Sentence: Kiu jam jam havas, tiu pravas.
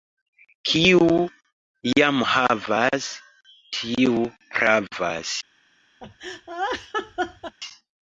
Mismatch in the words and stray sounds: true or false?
true